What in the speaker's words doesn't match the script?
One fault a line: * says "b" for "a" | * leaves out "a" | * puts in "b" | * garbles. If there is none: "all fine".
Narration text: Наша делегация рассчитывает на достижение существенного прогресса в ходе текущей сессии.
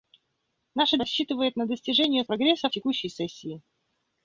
* leaves out "делегация"
* leaves out "существенного"
* leaves out "ходе"